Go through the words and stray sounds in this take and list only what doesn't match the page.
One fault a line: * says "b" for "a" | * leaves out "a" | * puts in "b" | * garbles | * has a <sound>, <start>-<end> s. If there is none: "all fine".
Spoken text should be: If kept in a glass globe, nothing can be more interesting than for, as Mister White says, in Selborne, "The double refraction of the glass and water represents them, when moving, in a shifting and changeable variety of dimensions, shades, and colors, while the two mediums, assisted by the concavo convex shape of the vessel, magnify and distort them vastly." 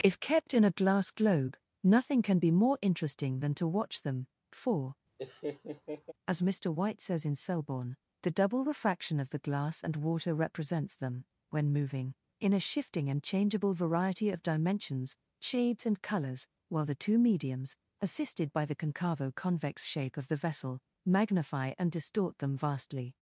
* puts in "to watch them"
* has a laugh, 5.2-6.1 s